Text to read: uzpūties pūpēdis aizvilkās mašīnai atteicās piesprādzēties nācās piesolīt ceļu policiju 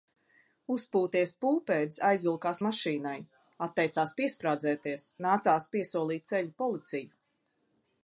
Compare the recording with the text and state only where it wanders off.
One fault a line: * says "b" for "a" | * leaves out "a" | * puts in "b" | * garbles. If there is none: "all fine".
all fine